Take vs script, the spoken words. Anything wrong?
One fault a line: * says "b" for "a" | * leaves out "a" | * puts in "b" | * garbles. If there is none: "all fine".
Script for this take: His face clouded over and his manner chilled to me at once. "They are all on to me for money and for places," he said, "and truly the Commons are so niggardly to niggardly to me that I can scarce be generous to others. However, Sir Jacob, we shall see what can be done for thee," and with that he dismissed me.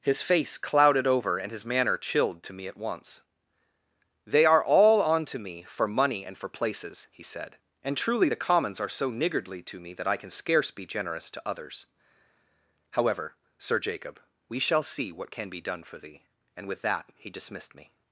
* leaves out "niggardly to"